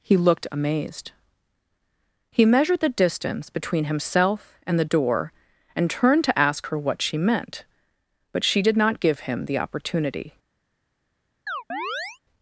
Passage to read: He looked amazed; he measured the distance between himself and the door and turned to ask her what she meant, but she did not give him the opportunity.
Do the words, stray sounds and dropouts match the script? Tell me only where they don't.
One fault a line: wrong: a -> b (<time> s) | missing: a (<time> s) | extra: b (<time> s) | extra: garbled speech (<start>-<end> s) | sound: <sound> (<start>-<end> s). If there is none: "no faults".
sound: chirp (11.5-12.2 s)